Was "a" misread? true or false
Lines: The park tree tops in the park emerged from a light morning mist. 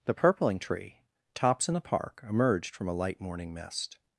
false